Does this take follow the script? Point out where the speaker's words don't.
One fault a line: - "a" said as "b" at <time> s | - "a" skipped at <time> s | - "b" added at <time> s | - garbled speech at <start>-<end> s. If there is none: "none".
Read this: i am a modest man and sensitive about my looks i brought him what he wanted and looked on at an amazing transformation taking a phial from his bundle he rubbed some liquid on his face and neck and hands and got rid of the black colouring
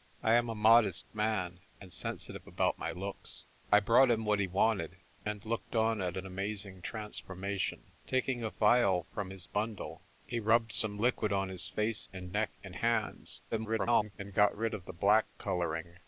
- garbled speech at 13.5-14.1 s